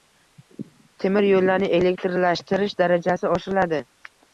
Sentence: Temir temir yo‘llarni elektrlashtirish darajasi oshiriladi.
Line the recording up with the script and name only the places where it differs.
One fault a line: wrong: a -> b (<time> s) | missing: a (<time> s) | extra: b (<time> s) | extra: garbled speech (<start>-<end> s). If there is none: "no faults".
missing: temir (1.3 s)